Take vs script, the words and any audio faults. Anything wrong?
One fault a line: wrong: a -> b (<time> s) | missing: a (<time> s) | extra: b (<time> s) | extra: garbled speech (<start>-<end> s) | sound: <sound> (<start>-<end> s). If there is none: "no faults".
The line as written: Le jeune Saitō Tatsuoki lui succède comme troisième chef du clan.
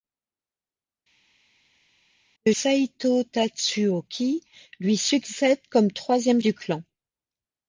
missing: jeune (2.5 s)
missing: chef (6.4 s)